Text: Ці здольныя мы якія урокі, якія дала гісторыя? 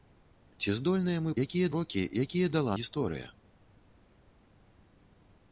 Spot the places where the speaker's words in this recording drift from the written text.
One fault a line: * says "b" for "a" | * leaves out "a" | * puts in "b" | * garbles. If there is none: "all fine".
all fine